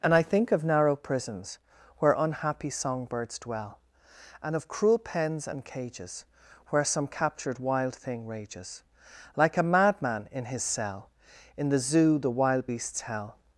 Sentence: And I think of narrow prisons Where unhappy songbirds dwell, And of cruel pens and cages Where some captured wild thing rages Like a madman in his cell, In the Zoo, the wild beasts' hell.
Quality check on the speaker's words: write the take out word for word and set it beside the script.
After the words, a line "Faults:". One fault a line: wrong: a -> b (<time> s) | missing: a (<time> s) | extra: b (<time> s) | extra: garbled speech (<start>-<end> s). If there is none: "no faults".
And I think of narrow prisons Where unhappy songbirds dwell, And of cruel pens and cages Where some captured wild thing rages Like a madman in his cell, In the Zoo, the wild beasts' hell.
Faults:
no faults